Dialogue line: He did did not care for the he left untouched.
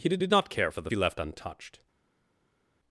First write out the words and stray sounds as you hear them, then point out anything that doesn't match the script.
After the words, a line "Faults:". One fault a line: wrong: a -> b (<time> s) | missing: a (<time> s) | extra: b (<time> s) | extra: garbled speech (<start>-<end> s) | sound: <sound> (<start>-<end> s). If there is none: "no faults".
He did did not care for the he left untouched.
Faults:
no faults